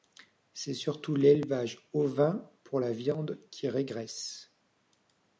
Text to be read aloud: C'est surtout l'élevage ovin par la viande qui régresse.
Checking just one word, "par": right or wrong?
wrong